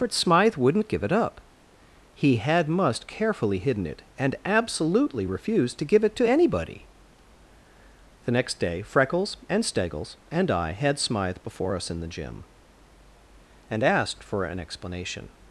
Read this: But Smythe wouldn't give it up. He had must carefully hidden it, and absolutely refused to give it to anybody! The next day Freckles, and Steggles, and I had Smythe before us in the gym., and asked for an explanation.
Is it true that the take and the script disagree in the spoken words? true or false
false